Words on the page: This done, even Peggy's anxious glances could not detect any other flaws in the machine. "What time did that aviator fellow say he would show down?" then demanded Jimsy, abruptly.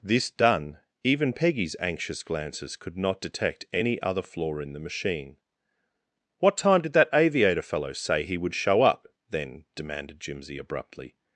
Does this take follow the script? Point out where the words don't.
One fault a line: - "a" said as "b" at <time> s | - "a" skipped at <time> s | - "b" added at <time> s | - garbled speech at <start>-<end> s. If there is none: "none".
- "flaws" said as "flaw" at 4.2 s
- "down" said as "up" at 8.8 s